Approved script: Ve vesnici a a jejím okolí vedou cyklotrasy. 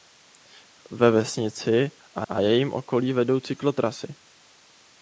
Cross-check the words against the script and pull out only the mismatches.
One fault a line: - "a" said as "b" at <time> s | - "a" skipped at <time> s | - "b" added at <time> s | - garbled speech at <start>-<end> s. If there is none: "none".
none